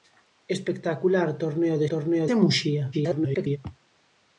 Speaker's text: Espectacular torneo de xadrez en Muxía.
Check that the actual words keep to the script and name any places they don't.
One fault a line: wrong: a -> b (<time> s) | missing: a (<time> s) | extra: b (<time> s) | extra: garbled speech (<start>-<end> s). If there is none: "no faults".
wrong: xadrez -> torneo (1.9 s)
extra: garbled speech (2.9-3.6 s)